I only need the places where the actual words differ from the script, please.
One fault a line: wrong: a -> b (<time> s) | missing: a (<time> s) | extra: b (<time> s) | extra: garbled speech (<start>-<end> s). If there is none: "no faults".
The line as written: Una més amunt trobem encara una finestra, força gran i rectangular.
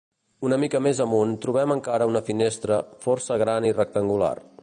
extra: mica (0.6 s)